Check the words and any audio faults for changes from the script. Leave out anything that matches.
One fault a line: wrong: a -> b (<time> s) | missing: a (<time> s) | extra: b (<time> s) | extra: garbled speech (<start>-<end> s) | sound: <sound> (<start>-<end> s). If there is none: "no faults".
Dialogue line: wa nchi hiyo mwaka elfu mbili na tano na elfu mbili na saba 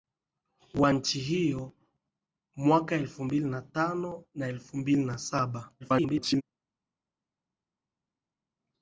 extra: garbled speech (5.8-6.4 s)